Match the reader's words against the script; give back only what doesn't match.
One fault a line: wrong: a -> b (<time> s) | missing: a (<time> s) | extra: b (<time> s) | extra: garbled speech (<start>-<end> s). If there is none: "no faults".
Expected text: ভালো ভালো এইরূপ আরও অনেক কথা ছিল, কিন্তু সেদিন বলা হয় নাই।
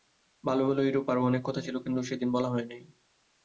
no faults